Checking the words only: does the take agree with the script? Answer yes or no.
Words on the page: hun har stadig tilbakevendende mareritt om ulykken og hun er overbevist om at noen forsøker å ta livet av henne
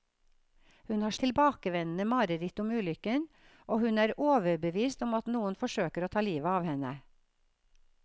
no